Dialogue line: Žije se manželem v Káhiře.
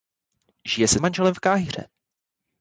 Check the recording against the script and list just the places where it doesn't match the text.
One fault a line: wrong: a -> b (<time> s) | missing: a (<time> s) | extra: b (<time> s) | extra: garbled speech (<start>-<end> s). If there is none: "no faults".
no faults